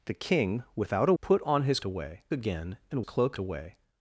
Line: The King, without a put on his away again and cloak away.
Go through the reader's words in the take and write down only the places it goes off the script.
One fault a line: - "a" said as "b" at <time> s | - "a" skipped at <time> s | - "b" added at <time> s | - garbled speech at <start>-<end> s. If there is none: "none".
none